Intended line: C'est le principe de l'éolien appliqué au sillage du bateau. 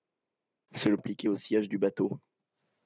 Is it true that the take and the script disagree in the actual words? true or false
true